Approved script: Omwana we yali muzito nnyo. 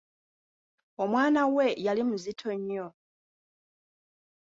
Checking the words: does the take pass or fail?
pass